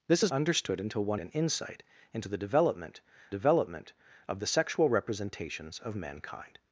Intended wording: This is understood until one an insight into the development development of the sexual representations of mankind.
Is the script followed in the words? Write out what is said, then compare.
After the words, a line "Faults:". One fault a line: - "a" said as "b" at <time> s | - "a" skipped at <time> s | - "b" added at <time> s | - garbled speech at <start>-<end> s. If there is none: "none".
This is understood until one an insight into the development development of the sexual representations of mankind.
Faults:
none